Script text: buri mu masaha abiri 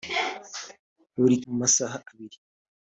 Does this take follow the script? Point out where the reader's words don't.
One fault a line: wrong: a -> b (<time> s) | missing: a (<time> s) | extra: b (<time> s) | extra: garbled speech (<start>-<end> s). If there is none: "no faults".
no faults